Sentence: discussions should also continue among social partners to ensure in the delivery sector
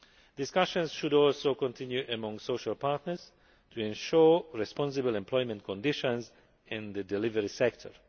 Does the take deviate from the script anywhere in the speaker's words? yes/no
yes